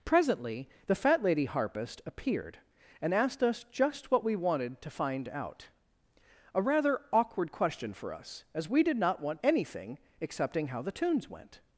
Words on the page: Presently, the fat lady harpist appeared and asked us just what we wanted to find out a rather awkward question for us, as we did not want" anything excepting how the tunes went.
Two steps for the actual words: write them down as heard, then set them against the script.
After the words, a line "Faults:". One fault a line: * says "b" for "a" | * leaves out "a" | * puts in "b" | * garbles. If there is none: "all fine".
Presently, the fat lady harpist appeared and asked us just what we wanted to find out a rather awkward question for us, as we did not want" anything excepting how the tunes went.
Faults:
all fine